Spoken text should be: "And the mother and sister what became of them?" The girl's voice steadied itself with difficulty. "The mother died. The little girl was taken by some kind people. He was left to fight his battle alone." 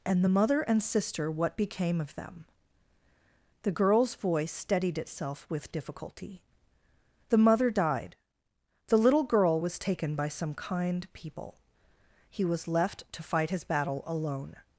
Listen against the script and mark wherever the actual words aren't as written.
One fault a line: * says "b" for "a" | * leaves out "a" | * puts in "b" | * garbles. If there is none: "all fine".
all fine